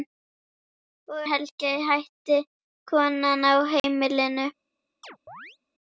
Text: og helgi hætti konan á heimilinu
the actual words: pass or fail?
pass